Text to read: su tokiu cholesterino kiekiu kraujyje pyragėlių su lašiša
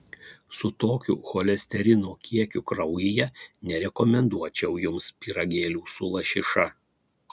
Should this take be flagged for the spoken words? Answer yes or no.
yes